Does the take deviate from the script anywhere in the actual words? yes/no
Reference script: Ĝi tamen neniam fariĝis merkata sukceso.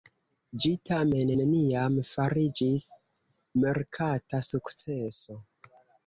no